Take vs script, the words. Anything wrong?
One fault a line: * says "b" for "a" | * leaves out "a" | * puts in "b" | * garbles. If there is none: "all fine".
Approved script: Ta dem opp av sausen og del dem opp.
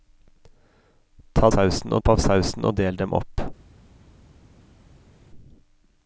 * says "sausen" for "dem"